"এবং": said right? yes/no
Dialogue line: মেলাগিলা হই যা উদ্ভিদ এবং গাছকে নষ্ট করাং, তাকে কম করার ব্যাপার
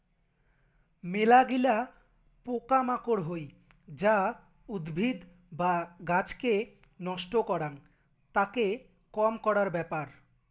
no